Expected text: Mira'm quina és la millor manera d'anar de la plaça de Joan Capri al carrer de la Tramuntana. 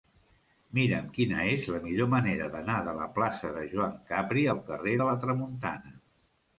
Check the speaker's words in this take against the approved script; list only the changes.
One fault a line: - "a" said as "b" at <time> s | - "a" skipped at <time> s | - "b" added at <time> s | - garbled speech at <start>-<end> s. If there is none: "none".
none